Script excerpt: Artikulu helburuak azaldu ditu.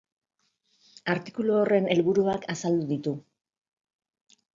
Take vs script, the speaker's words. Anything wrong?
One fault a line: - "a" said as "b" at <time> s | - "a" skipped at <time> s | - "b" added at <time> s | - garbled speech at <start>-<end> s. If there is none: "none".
- "horren" added at 1.6 s